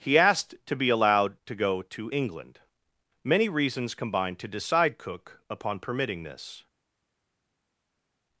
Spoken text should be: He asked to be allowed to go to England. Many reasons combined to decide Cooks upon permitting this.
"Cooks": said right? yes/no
no